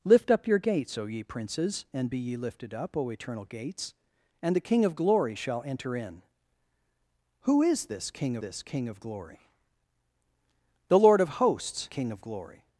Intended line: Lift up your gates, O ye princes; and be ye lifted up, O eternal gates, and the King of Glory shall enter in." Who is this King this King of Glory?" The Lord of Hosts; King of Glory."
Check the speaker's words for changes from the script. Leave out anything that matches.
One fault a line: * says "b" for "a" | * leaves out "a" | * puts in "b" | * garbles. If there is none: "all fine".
all fine